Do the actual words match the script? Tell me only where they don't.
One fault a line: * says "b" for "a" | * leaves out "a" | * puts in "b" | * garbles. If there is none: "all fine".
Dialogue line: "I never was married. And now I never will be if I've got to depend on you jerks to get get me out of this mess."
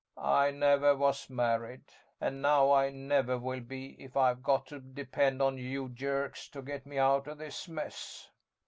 * leaves out "get"